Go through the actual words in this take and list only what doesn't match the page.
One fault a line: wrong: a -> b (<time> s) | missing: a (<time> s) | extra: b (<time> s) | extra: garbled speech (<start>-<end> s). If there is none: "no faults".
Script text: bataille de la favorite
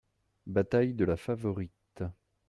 no faults